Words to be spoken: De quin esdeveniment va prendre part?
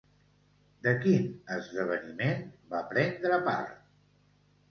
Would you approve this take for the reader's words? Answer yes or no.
yes